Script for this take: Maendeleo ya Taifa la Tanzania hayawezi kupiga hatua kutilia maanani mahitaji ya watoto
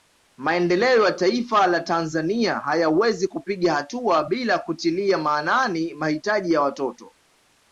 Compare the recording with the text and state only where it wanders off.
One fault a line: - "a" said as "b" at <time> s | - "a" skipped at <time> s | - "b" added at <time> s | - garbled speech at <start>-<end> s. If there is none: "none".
- "bila" added at 4.2 s